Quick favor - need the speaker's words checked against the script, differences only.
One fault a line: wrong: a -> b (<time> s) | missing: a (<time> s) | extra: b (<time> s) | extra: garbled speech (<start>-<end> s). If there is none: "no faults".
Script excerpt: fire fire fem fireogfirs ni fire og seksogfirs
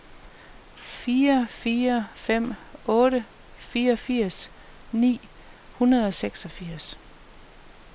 extra: otte (2.8 s)
wrong: fire -> hundrede (5.7 s)